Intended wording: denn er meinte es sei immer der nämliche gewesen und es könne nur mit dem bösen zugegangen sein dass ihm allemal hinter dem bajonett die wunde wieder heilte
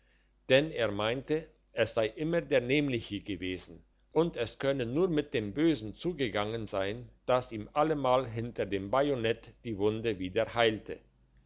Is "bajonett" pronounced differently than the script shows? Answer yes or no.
no